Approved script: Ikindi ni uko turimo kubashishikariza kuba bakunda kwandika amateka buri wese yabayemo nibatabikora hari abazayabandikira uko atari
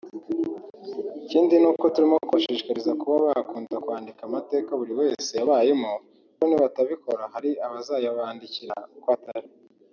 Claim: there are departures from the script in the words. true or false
false